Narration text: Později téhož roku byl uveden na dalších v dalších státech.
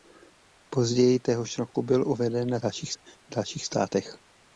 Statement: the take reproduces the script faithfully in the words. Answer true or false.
true